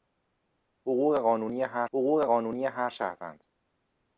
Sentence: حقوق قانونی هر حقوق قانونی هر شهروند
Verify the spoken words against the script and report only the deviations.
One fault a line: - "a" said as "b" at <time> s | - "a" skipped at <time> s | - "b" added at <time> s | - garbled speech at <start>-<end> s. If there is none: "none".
none